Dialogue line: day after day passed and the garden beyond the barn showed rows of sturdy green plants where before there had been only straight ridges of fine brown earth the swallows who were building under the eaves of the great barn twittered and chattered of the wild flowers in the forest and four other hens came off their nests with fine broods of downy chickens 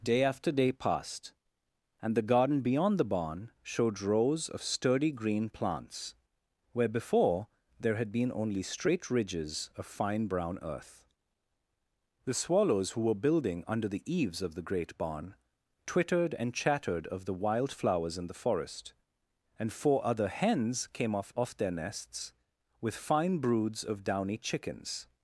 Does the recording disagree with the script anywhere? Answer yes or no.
yes